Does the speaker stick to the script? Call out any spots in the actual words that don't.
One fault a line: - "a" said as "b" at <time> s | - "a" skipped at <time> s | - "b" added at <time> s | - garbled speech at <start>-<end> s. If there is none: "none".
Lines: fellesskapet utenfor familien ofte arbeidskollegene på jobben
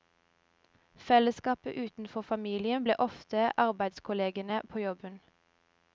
- "ble" added at 2.8 s